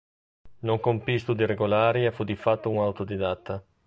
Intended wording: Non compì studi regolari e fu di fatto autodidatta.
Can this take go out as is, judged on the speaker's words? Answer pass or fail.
pass